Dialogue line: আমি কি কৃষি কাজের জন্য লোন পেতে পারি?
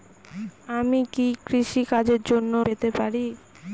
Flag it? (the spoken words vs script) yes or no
yes